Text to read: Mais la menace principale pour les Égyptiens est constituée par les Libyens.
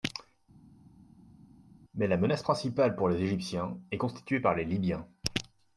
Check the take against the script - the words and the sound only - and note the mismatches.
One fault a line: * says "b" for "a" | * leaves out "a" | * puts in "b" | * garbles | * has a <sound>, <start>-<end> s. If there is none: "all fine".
all fine